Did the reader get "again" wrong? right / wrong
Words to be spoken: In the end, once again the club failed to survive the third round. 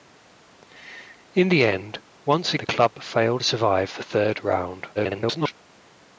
wrong